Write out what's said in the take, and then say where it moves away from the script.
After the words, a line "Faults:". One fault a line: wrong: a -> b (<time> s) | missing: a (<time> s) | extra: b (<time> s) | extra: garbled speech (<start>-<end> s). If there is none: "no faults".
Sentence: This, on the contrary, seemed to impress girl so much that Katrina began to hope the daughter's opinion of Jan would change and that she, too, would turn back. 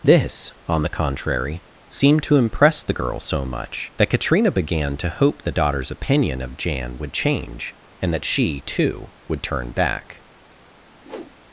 This, on the contrary, seemed to impress the girl so much that Katrina began to hope the daughter's opinion of Jan would change and that she, too, would turn back.
Faults:
extra: the (2.8 s)